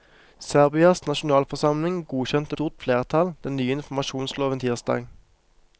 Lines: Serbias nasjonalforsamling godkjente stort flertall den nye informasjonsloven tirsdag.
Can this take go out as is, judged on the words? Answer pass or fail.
pass